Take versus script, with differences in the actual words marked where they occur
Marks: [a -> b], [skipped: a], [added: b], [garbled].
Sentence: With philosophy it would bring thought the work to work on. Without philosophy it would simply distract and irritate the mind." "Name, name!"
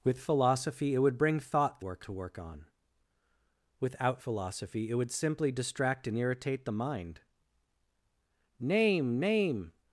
With philosophy it would bring thought the work to work on. Without philosophy it would simply distract and irritate the mind." "Name, name!"